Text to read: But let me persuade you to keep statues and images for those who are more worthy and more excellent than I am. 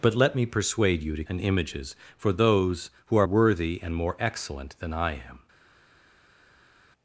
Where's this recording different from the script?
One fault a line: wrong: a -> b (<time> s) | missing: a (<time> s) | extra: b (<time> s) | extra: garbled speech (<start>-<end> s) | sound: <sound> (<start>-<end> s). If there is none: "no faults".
missing: keep statues (1.2 s)
missing: more (3.3 s)